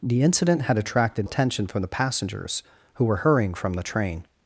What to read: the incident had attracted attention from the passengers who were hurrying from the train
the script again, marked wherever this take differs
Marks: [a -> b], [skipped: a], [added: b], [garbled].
the incident had attracted attention from the passengers who were hurrying from the train